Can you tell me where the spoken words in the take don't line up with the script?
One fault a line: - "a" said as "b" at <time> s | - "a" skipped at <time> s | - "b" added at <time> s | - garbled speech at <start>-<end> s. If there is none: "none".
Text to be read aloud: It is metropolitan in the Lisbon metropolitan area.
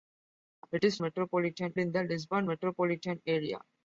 none